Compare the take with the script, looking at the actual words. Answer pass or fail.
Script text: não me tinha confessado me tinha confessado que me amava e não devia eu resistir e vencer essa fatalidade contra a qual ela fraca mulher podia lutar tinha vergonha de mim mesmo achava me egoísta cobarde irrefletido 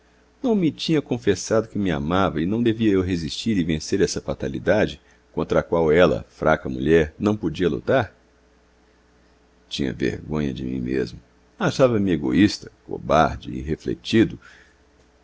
fail